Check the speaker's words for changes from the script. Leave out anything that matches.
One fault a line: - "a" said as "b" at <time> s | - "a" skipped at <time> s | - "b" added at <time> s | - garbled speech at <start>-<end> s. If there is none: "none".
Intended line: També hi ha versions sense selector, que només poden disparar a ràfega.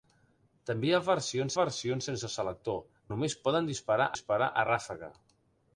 - "versions" added at 1.6 s
- "que" skipped at 2.8 s
- "disparar" added at 4.1 s